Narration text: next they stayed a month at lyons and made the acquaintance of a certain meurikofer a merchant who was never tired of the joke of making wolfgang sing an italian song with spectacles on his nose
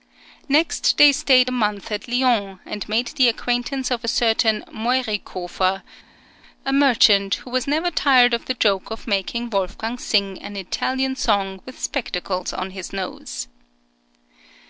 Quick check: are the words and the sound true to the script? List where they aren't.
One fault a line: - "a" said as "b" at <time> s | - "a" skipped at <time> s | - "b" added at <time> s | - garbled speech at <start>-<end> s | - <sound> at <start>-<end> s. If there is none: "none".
none